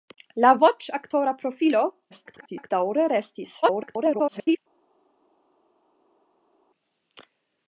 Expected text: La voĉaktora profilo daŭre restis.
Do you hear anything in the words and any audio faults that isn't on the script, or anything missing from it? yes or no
yes